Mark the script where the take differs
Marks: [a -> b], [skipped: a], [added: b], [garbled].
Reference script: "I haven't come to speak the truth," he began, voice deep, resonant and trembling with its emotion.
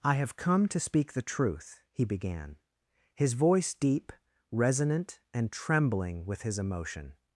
"I [haven't -> have] come to speak the truth," he began, [added: his] voice deep, resonant and trembling with [its -> his] emotion.